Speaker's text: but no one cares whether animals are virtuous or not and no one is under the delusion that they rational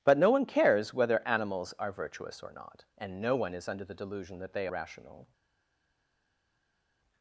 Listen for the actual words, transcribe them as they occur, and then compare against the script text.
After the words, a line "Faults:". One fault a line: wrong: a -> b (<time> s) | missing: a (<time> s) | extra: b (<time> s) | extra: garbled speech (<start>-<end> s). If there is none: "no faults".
but no one cares whether animals are virtuous or not and no one is under the delusion that they rational
Faults:
no faults